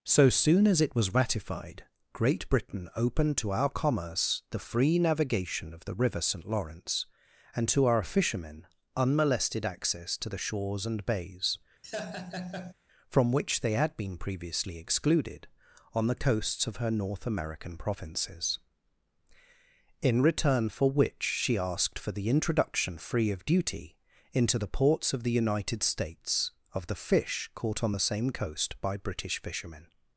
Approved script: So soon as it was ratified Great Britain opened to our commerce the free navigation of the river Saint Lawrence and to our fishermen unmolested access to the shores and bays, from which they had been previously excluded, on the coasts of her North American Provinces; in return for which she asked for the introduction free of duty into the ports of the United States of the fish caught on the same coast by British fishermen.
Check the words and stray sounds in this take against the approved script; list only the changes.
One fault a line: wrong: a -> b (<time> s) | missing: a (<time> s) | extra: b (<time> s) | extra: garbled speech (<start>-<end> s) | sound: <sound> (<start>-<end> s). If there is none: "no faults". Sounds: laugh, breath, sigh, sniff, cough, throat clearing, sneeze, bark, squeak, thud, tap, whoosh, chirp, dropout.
sound: laugh (11.8-12.7 s)